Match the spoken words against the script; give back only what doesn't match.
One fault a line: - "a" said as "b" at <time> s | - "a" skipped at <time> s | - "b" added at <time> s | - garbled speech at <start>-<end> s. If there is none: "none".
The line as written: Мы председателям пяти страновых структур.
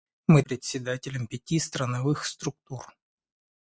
none